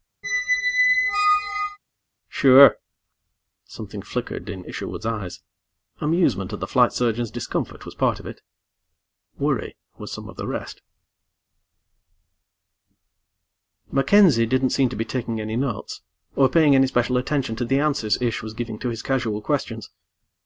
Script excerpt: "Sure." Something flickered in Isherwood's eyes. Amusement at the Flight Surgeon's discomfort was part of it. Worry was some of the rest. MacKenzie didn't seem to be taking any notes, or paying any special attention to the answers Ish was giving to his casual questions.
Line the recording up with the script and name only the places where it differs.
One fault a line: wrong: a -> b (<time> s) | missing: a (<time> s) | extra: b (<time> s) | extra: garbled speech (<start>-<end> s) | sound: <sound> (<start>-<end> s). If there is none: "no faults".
sound: squeak (0.2-1.8 s)